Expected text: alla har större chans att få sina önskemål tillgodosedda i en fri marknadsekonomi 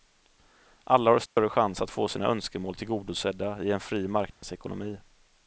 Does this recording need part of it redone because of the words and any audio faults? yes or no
yes